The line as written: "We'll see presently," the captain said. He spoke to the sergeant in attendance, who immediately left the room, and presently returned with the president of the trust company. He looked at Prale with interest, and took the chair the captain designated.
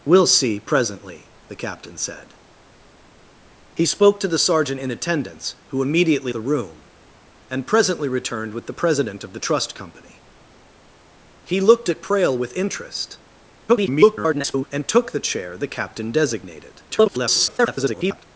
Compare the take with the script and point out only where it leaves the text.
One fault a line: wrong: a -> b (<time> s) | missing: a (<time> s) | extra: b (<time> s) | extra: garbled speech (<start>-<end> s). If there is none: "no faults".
missing: left (6.3 s)
extra: garbled speech (13.7-14.7 s)
extra: garbled speech (16.9-18.2 s)